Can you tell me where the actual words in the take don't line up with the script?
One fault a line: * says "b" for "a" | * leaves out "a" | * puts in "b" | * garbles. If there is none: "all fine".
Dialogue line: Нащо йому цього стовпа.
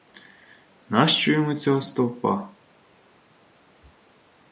all fine